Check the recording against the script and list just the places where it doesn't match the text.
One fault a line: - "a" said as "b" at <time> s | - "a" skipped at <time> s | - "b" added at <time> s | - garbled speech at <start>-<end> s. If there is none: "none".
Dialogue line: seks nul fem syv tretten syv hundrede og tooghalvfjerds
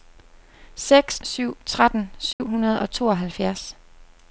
- "nul fem" skipped at 1.2 s